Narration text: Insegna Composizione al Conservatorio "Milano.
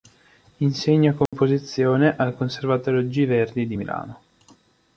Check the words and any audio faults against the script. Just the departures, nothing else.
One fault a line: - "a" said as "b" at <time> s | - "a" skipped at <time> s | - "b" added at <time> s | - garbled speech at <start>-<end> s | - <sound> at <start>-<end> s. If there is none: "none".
- dropout at 1.3-1.3 s
- "G Verdi di" added at 3.1 s